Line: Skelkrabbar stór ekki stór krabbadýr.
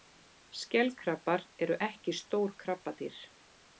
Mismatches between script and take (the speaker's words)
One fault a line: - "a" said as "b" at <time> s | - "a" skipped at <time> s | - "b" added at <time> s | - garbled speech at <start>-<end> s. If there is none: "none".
- "stór" said as "eru" at 1.7 s